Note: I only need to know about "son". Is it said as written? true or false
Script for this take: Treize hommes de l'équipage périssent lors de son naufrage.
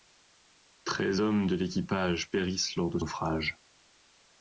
false